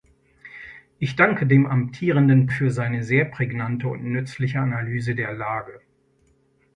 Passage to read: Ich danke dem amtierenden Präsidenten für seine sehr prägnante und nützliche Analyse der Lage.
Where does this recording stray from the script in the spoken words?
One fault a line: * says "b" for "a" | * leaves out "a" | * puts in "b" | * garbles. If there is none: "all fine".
* leaves out "Präsidenten"